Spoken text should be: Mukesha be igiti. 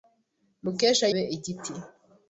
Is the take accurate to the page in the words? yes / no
yes